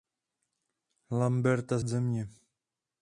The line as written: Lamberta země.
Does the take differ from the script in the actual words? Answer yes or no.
no